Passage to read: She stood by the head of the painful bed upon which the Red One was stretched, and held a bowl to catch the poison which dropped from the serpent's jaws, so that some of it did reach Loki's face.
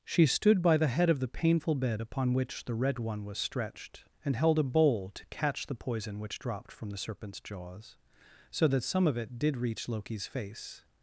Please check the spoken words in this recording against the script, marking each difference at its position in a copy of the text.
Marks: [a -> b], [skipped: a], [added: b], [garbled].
She stood by the head of the painful bed upon which the Red One was stretched, and held a bowl to catch the poison which dropped from the serpent's jaws, so that some of it did reach Loki's face.